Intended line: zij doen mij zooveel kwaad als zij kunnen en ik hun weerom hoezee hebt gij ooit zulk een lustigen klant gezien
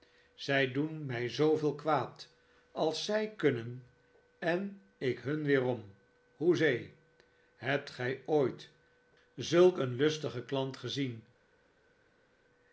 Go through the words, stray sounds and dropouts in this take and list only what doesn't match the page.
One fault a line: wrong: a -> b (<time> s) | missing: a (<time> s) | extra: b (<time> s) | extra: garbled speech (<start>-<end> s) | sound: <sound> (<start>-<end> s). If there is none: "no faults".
no faults